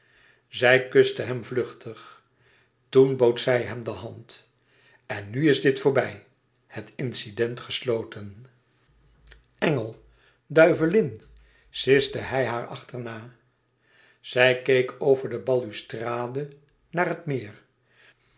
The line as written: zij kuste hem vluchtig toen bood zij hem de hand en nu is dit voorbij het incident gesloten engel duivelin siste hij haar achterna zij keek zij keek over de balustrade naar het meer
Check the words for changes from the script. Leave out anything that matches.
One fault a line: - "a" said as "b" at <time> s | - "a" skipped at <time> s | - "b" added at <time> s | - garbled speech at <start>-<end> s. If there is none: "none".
- "zij keek" skipped at 15.0 s